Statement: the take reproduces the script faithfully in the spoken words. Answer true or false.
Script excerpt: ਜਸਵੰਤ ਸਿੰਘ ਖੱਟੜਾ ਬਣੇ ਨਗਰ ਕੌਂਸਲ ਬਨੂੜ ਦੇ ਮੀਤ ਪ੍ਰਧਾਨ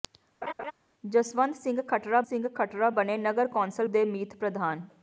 false